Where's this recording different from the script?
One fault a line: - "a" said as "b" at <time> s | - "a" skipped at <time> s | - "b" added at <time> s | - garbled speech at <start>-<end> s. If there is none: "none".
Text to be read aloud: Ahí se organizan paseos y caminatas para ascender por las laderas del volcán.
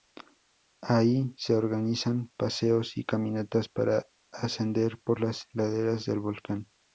none